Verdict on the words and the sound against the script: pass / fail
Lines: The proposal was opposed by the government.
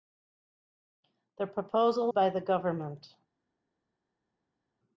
fail